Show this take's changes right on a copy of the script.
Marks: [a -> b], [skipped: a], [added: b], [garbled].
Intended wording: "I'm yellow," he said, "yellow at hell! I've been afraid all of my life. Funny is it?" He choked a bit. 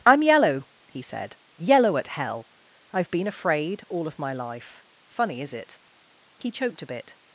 "I'm yellow," he said, "yellow at hell! I've been afraid all of my life. Funny is it?" He choked a bit.